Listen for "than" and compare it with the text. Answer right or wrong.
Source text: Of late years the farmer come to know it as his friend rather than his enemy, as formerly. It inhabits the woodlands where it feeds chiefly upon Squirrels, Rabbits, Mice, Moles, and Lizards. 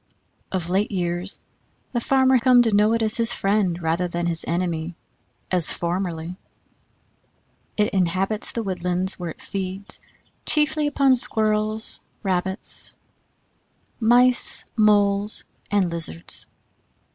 right